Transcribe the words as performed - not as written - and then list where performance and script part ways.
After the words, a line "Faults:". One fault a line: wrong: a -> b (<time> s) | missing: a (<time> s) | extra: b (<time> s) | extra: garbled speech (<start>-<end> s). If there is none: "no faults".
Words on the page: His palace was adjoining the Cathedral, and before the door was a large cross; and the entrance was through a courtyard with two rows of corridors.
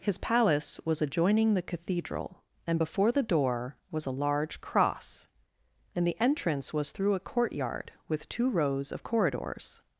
His palace was adjoining the Cathedral, and before the door was a large cross; and the entrance was through a courtyard with two rows of corridors.
Faults:
no faults